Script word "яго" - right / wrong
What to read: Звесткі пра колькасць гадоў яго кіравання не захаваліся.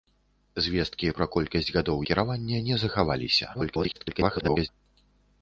wrong